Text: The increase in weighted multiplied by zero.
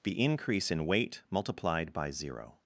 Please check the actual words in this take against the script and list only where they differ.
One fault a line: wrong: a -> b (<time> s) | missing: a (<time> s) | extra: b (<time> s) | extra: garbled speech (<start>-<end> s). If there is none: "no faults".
wrong: weighted -> weight (0.8 s)